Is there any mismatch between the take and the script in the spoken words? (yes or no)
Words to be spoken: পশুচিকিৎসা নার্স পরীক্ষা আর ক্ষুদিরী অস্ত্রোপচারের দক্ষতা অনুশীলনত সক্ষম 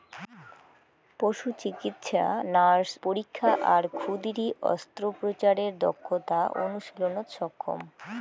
no